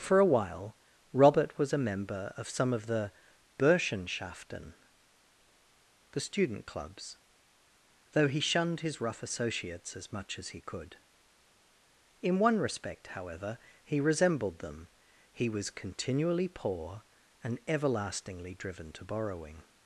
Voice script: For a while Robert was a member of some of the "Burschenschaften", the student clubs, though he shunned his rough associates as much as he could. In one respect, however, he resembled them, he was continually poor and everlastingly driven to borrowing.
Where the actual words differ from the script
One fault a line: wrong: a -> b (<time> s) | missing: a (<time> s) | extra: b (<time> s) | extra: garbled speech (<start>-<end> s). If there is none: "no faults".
no faults